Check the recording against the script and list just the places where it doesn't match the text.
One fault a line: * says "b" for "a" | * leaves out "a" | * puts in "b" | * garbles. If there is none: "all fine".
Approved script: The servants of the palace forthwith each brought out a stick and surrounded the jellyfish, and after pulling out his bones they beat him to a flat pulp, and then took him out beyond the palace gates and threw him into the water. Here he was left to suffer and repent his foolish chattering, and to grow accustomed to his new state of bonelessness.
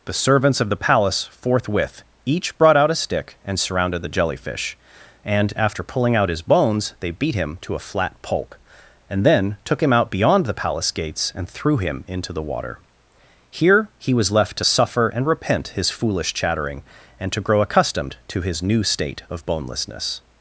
all fine